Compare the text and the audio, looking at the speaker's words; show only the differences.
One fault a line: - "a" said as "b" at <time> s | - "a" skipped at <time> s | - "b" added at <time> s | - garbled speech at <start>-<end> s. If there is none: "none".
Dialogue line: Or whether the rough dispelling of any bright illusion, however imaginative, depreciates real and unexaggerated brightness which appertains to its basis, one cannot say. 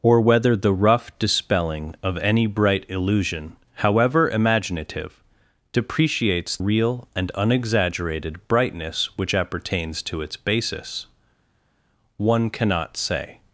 none